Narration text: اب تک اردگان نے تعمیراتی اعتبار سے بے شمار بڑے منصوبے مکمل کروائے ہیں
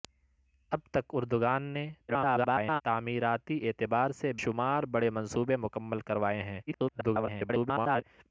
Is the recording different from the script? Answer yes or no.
yes